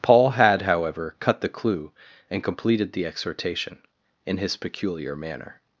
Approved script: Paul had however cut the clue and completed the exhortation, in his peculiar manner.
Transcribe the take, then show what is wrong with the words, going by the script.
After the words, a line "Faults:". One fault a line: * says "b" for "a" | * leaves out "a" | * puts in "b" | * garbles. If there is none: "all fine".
Paul had however cut the clue and completed the exhortation, in his peculiar manner.
Faults:
all fine